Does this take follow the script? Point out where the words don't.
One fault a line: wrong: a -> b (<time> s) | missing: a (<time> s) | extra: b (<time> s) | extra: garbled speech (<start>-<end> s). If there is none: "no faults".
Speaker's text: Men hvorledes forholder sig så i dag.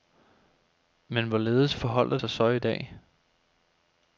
no faults